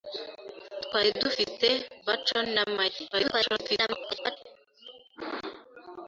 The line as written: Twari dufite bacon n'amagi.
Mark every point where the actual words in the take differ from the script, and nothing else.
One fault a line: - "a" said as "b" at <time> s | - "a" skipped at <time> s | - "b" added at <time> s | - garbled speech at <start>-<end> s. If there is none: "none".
- garbled speech at 3.1-4.4 s